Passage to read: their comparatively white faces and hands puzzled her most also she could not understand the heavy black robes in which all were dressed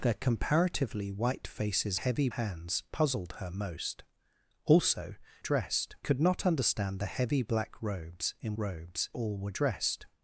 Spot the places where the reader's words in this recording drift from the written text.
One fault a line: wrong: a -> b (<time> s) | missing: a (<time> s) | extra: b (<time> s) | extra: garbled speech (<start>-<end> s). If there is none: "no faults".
wrong: and -> heavy (1.9 s)
wrong: she -> dressed (5.4 s)
wrong: which -> robes (8.6 s)